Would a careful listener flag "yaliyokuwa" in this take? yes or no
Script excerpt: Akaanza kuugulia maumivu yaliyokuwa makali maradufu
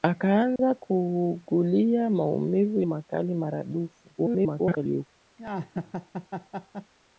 yes